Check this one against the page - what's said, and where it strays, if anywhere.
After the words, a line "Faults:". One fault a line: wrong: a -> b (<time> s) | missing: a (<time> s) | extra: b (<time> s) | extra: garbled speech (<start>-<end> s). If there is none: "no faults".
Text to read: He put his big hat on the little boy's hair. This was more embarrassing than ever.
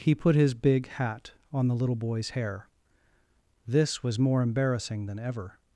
He put his big hat on the little boy's hair. This was more embarrassing than ever.
Faults:
no faults